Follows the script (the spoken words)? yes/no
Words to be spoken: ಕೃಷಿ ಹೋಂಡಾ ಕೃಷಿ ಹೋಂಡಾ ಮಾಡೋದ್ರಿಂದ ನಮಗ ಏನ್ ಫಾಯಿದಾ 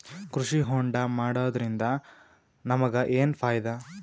no